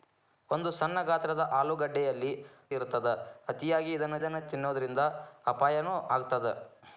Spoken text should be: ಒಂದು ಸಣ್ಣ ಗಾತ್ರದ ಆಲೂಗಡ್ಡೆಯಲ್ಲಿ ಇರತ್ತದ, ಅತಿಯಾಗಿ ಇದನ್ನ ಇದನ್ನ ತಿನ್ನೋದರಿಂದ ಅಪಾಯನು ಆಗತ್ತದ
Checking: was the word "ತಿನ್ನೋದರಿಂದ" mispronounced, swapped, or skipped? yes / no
no